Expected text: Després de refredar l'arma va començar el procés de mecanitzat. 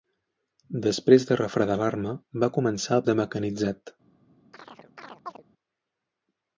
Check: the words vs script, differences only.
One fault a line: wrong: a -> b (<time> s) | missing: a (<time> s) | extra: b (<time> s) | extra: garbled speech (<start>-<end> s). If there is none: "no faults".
missing: procés (3.0 s)